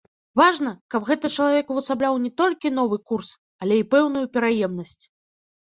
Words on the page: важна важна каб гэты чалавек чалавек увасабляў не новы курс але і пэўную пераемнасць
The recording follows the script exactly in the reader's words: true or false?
false